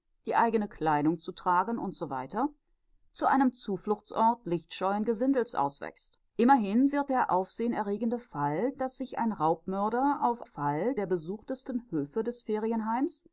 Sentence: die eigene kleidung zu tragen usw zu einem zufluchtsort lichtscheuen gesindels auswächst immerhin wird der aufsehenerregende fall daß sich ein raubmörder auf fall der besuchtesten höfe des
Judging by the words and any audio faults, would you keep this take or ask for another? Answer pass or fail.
pass